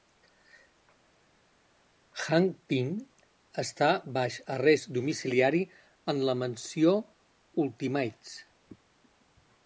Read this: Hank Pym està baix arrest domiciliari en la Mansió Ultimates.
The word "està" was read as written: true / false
true